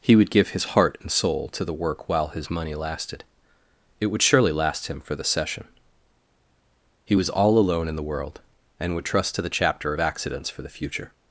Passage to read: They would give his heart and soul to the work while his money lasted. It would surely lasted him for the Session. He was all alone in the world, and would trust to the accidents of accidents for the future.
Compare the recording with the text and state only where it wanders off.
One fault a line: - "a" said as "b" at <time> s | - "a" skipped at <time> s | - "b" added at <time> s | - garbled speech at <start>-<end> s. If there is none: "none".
- "They" said as "He" at 0.0 s
- "lasted" said as "last" at 4.5 s
- "accidents" said as "chapter" at 9.5 s